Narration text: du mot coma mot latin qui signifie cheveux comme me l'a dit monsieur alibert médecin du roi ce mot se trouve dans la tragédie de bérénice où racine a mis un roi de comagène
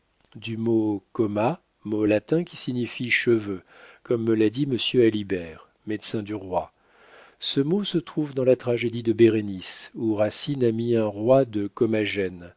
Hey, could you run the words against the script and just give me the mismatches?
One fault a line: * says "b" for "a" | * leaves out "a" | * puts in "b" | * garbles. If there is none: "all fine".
all fine